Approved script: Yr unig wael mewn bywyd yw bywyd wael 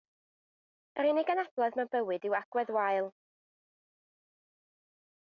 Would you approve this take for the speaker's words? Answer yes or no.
no